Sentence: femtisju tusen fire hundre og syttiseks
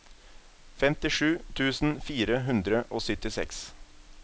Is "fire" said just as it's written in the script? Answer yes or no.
yes